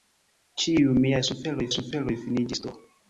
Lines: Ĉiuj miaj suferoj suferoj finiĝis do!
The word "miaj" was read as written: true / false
true